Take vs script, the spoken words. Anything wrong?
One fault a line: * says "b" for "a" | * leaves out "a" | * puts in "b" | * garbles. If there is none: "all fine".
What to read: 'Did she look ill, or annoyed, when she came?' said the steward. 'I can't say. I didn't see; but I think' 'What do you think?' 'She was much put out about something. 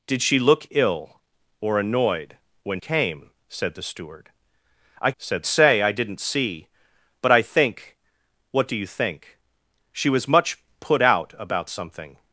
* leaves out "she"
* says "said" for "can't"